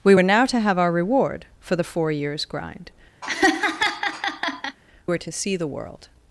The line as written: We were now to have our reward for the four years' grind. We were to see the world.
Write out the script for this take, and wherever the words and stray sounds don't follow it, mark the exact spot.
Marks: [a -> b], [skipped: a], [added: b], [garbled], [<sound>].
We were now to have our reward for the four years' grind. [skipped: We] [laugh] were to see the world.